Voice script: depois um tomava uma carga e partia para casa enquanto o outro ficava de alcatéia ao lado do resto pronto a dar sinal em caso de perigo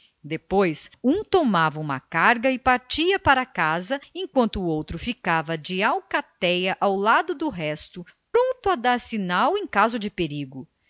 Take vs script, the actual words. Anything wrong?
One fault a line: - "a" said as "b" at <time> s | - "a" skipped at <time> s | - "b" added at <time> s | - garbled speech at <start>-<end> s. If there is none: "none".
none